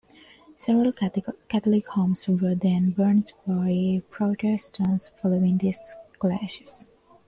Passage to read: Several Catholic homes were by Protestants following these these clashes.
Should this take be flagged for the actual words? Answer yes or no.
yes